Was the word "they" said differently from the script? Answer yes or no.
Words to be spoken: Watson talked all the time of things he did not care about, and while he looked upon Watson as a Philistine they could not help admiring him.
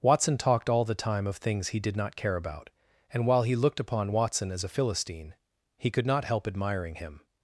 yes